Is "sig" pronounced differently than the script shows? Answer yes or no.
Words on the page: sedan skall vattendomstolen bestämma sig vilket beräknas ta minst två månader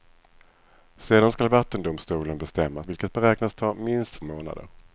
yes